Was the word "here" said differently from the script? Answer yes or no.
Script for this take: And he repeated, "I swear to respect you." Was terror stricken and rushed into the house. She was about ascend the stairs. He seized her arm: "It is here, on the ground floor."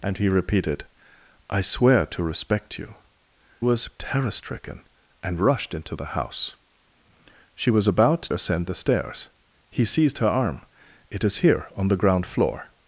no